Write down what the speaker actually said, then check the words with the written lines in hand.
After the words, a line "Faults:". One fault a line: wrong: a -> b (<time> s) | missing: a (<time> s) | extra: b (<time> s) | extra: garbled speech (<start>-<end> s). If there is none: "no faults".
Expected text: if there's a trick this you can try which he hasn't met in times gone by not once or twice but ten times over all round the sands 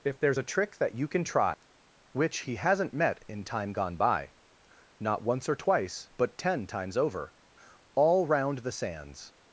if there's a trick that you can try which he hasn't met in time gone by not once or twice but ten times over all round the sands
Faults:
wrong: this -> that (0.8 s)
wrong: times -> time (3.4 s)